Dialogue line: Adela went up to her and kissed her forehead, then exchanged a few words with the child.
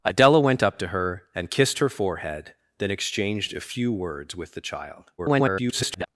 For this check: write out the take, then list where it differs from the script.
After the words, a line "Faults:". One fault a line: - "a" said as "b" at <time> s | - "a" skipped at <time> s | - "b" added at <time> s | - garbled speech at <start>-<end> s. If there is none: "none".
Adela went up to her and kissed her forehead, then exchanged a few words with the child. [garbled]
Faults:
- garbled speech at 5.2-6.1 s